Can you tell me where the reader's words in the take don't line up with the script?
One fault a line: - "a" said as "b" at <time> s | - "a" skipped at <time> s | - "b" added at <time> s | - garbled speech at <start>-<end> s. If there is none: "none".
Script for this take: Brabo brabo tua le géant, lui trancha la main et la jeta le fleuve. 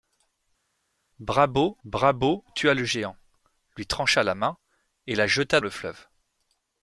none